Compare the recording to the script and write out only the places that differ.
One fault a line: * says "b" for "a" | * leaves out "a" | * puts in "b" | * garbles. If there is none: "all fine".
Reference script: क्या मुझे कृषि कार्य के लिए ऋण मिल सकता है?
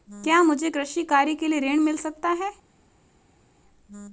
all fine